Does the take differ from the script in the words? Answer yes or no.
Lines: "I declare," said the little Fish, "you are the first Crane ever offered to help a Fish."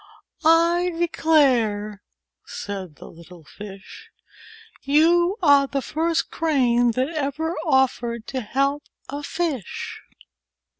yes